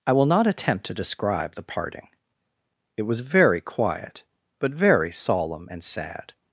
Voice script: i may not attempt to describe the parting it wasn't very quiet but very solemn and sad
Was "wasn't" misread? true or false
true